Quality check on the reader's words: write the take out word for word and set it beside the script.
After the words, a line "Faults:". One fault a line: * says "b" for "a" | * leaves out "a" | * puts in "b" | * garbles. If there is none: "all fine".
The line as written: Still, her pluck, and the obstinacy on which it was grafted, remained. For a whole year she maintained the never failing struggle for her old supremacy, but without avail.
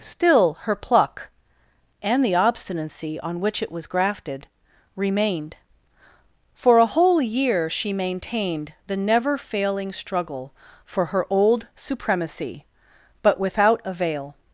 Still, her pluck, and the obstinacy on which it was grafted, remained. For a whole year she maintained the never failing struggle for her old supremacy, but without avail.
Faults:
all fine